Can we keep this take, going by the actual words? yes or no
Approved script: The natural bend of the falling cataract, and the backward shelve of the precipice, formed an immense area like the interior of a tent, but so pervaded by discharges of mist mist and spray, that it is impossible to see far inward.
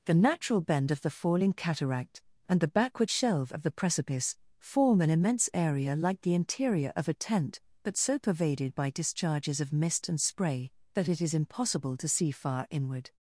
no